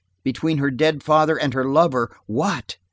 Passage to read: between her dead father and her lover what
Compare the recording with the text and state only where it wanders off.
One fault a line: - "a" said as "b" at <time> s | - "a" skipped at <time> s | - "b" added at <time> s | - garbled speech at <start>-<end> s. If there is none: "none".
none